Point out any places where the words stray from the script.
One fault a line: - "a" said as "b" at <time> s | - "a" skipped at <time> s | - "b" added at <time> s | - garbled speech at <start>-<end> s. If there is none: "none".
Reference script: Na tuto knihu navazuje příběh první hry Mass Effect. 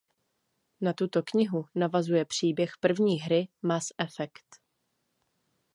none